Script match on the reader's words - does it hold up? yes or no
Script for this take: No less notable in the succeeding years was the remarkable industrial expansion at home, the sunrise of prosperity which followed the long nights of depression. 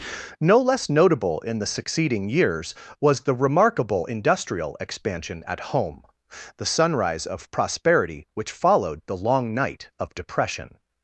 no